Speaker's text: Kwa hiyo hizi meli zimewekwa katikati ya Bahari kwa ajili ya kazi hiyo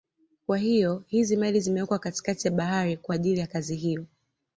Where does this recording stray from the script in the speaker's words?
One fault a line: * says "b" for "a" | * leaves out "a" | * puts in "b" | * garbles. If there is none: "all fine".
all fine